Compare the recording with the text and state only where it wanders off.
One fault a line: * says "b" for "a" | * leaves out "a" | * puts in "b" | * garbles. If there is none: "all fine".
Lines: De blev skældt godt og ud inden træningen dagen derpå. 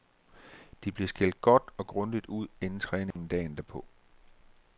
* puts in "grundigt"